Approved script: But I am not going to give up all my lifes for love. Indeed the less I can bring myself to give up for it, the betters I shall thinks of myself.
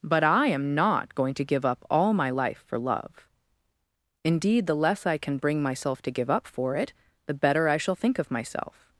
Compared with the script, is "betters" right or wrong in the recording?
wrong